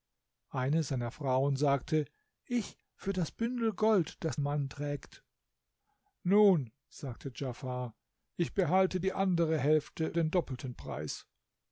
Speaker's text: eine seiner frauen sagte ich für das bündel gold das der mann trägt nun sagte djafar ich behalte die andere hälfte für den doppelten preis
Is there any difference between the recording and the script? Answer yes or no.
yes